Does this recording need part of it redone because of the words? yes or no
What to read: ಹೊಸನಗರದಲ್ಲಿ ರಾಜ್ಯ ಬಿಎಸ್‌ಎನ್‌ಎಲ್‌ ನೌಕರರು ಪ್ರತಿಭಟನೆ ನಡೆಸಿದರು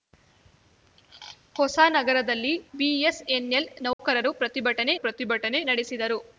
yes